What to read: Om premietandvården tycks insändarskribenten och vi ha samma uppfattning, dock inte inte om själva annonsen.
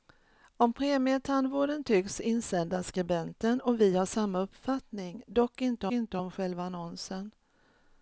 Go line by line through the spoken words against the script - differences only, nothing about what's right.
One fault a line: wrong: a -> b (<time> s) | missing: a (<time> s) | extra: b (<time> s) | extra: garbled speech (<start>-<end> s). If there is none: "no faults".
no faults